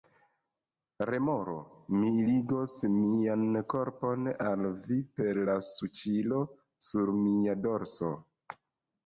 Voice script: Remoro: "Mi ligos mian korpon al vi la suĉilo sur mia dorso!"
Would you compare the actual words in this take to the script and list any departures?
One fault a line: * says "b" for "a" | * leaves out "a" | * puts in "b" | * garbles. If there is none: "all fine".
* puts in "per"